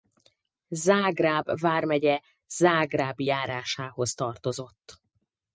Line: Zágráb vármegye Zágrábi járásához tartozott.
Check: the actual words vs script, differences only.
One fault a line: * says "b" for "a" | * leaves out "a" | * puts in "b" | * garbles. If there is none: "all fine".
all fine